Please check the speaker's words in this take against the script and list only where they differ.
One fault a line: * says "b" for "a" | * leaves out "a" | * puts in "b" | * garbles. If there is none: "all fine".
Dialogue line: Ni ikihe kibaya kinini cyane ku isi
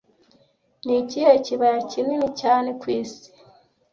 all fine